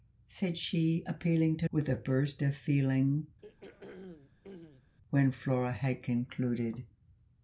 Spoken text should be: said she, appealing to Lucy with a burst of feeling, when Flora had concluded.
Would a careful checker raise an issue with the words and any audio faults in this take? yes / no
yes